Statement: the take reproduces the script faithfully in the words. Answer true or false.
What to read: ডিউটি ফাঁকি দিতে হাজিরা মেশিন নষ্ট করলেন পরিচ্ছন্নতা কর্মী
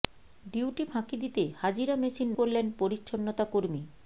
false